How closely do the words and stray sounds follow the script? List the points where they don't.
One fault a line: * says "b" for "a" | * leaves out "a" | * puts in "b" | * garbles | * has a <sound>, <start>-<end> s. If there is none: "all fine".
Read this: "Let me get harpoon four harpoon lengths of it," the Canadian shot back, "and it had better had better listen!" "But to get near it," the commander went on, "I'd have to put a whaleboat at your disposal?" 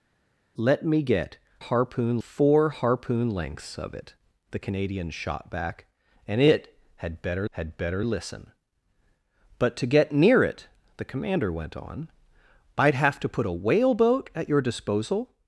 all fine